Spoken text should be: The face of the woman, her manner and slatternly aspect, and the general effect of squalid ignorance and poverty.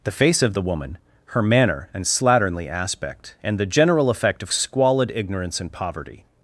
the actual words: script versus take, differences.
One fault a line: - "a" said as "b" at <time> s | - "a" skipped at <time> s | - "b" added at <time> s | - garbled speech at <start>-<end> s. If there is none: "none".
none